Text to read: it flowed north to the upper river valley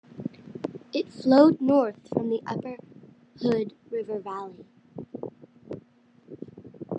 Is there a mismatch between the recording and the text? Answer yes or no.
yes